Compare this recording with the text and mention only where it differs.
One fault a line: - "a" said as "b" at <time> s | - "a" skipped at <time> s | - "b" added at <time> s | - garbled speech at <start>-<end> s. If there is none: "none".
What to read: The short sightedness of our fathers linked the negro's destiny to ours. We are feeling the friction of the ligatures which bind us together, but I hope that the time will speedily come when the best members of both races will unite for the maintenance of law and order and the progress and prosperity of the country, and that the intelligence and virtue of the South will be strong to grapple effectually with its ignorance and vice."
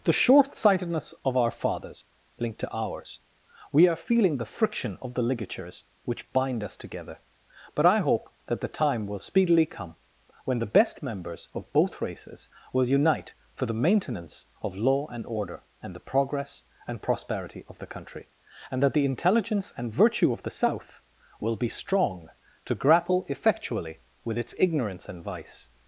- "the negro's destiny" skipped at 2.6 s